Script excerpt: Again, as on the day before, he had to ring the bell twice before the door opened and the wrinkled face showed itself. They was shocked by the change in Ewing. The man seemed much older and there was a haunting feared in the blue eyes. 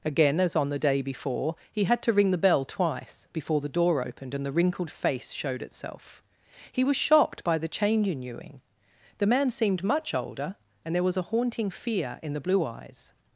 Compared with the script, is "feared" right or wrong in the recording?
wrong